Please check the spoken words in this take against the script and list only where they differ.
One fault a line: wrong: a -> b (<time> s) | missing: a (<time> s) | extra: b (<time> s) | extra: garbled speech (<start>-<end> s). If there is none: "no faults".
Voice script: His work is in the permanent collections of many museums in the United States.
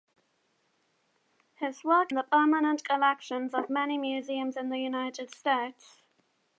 missing: is in (2.1 s)